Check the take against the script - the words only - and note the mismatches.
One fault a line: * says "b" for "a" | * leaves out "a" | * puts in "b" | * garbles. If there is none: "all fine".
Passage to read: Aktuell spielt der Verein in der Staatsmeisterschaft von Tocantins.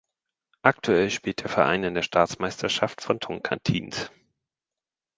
all fine